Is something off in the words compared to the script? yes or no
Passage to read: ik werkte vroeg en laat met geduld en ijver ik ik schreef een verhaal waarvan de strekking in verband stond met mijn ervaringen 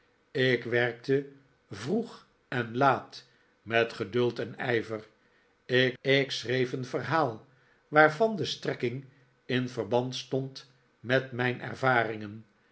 no